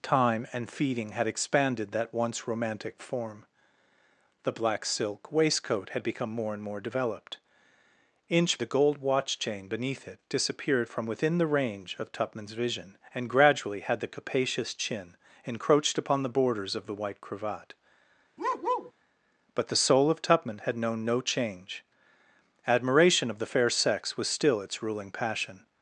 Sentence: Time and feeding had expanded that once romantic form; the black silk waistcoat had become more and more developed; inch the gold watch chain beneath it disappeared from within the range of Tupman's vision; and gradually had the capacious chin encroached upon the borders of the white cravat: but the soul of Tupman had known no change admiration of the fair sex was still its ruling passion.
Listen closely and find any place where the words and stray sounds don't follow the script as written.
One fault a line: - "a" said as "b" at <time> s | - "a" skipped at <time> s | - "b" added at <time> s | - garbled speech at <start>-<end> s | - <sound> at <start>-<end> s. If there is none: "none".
- bark at 18.4-18.9 s